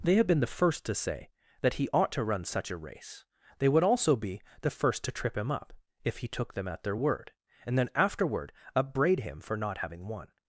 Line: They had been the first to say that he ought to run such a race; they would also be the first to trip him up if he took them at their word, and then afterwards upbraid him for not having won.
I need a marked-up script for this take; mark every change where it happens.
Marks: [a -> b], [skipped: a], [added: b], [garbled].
They had been the first to say that he ought to run such a race; they would also be the first to trip him up if he took them at their word, and then [afterwards -> afterward] upbraid him for not having won.